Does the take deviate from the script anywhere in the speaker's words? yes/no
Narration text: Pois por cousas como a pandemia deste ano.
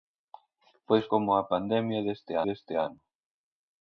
yes